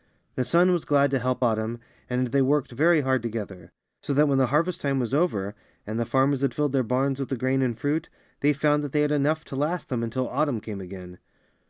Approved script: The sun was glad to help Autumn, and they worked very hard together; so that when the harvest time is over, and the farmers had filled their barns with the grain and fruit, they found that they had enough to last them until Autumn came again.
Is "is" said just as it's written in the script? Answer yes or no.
no